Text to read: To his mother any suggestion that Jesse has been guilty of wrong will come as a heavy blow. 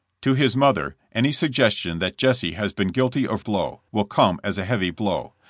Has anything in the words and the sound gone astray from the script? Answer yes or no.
yes